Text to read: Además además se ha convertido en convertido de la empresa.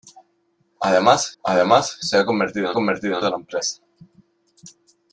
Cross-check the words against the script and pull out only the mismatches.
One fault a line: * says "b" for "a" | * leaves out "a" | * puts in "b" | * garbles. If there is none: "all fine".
all fine